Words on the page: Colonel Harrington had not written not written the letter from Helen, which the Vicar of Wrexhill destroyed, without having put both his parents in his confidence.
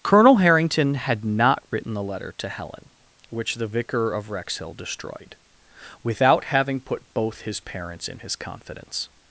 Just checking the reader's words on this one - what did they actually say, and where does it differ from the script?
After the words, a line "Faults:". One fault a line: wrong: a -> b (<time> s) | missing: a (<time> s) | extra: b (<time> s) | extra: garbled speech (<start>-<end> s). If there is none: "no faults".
Colonel Harrington had not written the letter to Helen, which the Vicar of Wrexhill destroyed, without having put both his parents in his confidence.
Faults:
missing: not written (1.9 s)
wrong: from -> to (2.4 s)